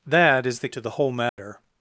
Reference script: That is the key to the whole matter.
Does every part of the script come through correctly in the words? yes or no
no